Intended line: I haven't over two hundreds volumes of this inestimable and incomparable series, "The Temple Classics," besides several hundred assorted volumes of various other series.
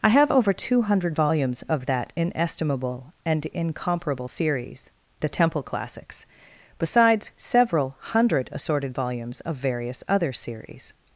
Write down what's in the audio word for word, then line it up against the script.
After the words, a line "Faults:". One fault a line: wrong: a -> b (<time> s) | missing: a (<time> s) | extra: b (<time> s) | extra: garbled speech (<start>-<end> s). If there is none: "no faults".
I have over two hundred volumes of that inestimable and incomparable series, "The Temple Classics," besides several hundred assorted volumes of various other series.
Faults:
wrong: haven't -> have (0.1 s)
wrong: hundreds -> hundred (0.8 s)
wrong: this -> that (1.9 s)